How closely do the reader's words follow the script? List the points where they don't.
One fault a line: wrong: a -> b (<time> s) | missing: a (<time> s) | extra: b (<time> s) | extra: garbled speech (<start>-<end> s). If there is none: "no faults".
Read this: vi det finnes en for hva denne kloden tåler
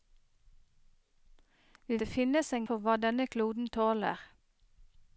no faults